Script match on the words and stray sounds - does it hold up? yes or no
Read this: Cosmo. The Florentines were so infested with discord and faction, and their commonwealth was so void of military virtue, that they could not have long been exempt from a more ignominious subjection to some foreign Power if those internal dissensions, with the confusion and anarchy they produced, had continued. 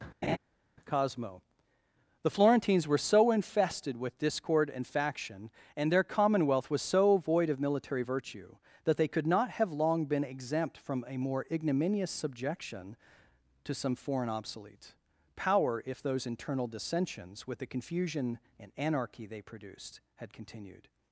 no